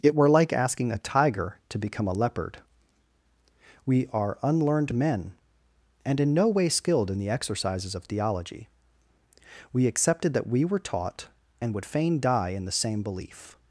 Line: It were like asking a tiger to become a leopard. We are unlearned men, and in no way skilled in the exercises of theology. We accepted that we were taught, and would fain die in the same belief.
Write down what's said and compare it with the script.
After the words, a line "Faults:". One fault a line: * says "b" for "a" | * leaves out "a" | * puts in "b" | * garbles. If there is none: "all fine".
It were like asking a tiger to become a leopard. We are unlearned men, and in no way skilled in the exercises of theology. We accepted that we were taught, and would fain die in the same belief.
Faults:
all fine